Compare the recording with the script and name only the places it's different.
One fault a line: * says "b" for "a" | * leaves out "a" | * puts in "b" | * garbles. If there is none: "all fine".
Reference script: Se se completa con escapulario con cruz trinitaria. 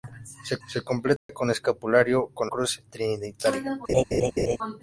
all fine